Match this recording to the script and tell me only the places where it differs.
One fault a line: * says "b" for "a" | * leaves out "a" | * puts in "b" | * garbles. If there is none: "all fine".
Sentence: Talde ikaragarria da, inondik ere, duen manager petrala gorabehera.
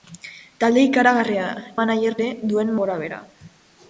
* says "manager" for "inondik"
* leaves out "manager petrala"